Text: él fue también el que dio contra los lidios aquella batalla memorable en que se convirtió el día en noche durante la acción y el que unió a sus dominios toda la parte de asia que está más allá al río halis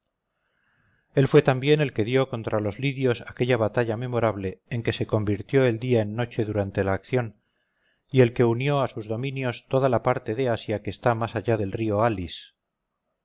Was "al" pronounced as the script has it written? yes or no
no